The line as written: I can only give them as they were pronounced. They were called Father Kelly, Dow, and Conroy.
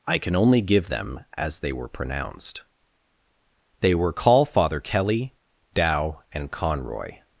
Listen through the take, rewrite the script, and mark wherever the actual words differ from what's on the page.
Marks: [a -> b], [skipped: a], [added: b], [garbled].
I can only give them as they were pronounced. They were [called -> call] Father Kelly, Dow, and Conroy.